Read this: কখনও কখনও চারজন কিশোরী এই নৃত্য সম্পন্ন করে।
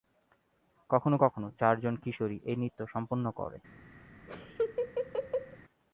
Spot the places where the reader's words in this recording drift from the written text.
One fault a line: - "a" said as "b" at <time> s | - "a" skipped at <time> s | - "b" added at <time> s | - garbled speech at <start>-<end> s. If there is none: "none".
none